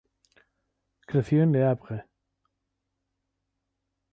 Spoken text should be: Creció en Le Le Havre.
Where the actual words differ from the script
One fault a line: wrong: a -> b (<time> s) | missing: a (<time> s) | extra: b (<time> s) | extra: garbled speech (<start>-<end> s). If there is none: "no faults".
missing: Le (1.6 s)